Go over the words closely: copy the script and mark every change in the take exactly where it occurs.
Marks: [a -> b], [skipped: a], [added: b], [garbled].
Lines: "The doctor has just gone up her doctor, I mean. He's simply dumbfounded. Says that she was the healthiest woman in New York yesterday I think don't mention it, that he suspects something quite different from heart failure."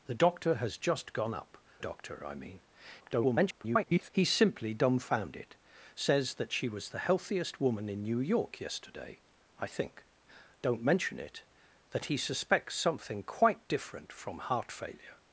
"The doctor has just gone up [skipped: her] doctor, I mean. [garbled] He's simply dumbfounded. Says that she was the healthiest woman in New York yesterday I think don't mention it, that he suspects something quite different from heart failure."